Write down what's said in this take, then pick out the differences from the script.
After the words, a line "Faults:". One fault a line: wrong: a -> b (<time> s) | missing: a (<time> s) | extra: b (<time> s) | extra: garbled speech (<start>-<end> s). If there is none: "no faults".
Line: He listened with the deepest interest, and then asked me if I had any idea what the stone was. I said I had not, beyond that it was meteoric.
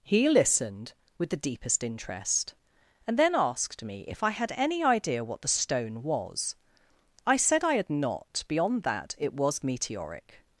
He listened with the deepest interest, and then asked me if I had any idea what the stone was. I said I had not, beyond that it was meteoric.
Faults:
no faults